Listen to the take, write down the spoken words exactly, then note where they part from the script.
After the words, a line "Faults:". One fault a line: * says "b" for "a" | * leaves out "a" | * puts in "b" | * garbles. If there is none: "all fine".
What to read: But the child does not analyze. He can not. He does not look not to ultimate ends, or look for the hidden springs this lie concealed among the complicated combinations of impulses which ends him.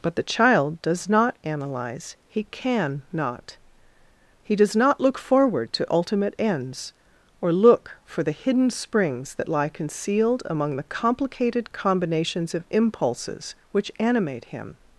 But the child does not analyze. He can not. He does not look forward to ultimate ends, or look for the hidden springs that lie concealed among the complicated combinations of impulses which animate him.
Faults:
* says "forward" for "not"
* says "that" for "this"
* says "animate" for "ends"